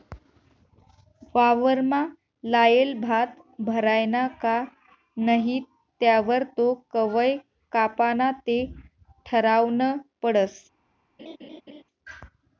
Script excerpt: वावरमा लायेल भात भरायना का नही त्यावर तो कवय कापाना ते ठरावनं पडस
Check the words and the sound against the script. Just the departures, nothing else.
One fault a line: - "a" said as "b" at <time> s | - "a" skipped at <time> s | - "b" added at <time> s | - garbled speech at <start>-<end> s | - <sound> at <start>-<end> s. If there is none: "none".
- laugh at 11.2-11.8 s